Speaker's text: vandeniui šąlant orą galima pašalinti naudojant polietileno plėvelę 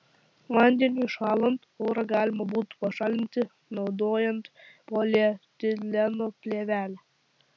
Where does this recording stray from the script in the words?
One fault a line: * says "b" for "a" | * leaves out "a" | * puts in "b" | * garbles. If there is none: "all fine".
* puts in "būtų"